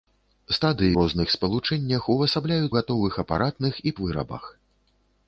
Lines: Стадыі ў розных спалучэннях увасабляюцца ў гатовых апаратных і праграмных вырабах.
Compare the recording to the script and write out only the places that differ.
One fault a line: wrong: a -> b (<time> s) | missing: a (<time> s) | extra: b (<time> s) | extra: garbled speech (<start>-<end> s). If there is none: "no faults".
missing: ў (0.9 s)
missing: ў (2.7 s)
missing: праграмных (4.0 s)